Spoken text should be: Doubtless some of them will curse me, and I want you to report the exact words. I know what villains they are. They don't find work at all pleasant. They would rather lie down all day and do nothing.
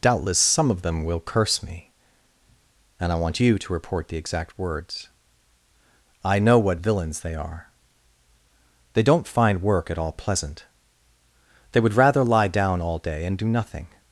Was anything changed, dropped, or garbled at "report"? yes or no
no